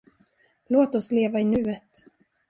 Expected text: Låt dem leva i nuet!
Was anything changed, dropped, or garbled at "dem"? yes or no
yes